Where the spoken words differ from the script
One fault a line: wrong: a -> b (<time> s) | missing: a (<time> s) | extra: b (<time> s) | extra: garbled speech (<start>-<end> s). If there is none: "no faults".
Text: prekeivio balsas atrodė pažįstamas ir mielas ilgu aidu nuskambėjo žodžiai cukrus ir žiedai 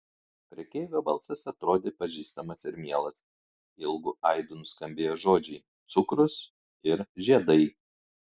no faults